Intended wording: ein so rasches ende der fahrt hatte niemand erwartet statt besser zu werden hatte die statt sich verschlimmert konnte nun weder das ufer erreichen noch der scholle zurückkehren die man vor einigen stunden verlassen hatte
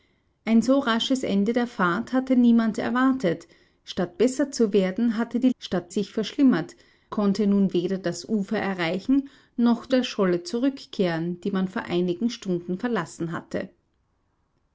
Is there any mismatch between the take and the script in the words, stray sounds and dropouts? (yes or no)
no